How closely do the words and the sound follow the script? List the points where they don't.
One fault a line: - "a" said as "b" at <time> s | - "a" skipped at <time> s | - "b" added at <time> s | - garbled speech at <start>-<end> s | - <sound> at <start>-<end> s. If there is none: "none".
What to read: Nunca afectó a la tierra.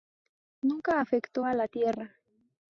none